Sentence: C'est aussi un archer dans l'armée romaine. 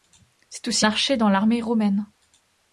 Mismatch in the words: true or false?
true